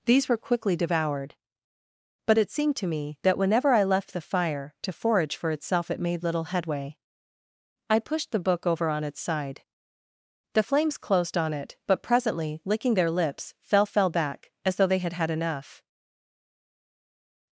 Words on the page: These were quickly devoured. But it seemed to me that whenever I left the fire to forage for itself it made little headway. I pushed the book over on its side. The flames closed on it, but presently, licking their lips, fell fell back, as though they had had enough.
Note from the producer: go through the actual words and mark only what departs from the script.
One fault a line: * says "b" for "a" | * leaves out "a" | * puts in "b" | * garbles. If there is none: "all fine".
all fine